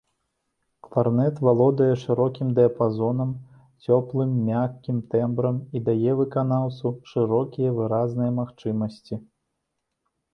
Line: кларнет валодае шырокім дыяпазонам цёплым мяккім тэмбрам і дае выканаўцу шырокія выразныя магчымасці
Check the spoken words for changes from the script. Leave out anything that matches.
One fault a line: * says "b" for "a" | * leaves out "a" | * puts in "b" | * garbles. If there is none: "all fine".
all fine